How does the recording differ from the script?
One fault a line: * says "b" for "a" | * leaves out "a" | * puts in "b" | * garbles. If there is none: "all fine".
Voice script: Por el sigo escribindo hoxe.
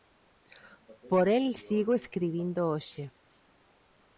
all fine